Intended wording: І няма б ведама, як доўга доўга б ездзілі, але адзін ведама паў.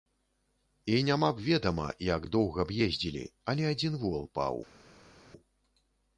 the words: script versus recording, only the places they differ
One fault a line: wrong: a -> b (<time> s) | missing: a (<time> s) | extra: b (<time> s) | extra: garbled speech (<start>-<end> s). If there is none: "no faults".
missing: доўга (2.6 s)
wrong: ведама -> вол (4.1 s)